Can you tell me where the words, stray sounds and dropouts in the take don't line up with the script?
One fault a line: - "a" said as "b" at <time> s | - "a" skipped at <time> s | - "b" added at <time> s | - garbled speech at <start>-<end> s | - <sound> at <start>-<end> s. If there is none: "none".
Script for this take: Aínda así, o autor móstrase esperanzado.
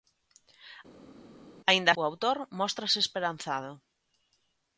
- "así" skipped at 1.9 s